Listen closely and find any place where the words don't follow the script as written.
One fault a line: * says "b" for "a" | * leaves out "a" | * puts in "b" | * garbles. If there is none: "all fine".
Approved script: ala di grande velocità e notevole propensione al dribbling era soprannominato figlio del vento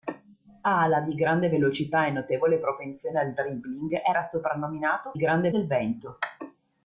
* says "grande" for "figlio"